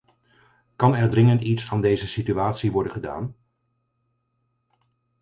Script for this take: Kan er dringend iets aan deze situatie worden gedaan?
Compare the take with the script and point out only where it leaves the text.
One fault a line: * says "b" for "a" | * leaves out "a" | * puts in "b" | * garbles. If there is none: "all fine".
all fine